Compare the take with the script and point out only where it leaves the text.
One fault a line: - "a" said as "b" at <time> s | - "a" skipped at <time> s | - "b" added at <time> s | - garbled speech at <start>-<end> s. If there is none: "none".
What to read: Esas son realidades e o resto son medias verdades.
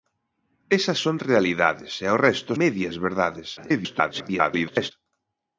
- "son" skipped at 2.5 s
- garbled speech at 3.6-4.9 s